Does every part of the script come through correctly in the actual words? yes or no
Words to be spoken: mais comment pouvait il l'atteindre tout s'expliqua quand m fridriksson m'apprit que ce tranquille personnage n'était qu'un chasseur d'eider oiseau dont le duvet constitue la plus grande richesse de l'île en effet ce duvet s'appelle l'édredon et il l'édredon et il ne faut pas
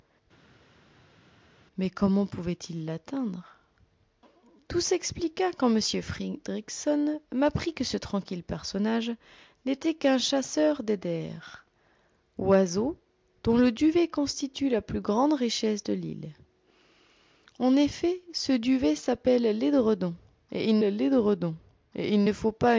yes